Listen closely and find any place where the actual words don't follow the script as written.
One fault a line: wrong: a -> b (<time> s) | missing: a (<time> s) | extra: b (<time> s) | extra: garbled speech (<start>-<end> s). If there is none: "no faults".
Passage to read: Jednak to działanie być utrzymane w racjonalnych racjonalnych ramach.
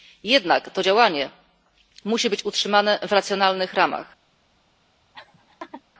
extra: musi (2.0 s)
missing: racjonalnych (3.7 s)